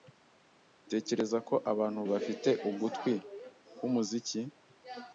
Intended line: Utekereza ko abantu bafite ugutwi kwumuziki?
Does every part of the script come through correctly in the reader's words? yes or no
yes